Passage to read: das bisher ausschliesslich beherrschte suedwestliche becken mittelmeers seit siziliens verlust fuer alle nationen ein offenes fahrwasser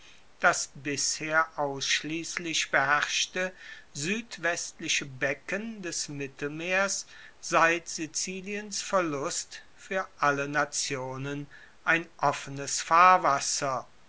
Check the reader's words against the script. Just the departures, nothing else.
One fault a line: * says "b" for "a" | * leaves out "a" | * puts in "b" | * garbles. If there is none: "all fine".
* puts in "des"